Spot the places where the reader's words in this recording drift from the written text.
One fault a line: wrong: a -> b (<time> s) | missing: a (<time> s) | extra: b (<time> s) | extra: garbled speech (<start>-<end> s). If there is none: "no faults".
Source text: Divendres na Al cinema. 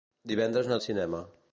no faults